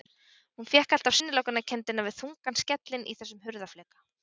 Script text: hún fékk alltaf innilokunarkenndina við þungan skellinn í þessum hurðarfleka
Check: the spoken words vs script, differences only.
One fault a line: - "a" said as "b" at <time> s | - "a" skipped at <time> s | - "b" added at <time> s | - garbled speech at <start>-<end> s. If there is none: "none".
none